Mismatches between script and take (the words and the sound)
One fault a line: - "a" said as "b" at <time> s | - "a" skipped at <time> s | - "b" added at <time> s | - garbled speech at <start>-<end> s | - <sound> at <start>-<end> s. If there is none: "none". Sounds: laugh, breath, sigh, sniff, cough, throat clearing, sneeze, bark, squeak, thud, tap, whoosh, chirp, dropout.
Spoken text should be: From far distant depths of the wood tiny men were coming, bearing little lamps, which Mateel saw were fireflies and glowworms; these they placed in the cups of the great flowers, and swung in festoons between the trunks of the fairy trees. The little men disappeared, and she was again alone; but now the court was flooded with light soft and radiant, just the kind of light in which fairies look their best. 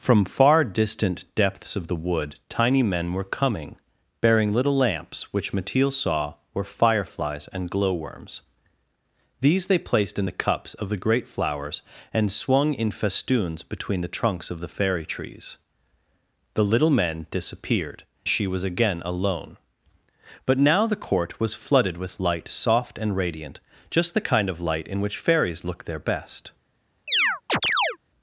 - "and" skipped at 18.0 s
- chirp at 27.1-28.0 s